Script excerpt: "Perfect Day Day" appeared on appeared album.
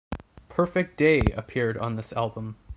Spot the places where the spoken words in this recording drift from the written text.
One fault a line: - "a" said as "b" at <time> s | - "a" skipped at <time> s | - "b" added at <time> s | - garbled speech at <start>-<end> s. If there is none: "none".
- "Day" skipped at 1.3 s
- "appeared" said as "this" at 1.9 s